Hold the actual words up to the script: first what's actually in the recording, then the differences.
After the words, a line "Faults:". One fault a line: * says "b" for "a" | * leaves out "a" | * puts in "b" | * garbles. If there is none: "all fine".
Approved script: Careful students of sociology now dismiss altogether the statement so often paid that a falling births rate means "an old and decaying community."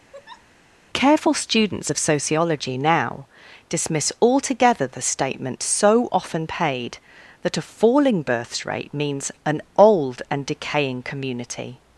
Careful students of sociology now dismiss altogether the statement so often paid that a falling births rate means "an old and decaying community."
Faults:
all fine